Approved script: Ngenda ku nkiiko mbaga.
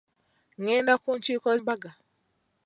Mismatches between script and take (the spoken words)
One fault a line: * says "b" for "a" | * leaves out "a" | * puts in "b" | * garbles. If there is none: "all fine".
all fine